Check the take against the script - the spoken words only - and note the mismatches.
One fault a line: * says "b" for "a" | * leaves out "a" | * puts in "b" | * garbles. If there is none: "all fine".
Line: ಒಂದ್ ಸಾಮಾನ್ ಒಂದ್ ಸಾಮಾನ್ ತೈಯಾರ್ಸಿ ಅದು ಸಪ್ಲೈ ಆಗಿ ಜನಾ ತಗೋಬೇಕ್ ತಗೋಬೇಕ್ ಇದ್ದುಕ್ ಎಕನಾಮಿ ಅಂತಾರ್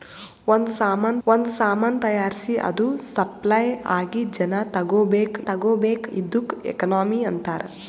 all fine